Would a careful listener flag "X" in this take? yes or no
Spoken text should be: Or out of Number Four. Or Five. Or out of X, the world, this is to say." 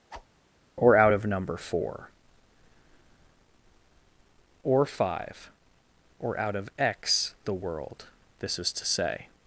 no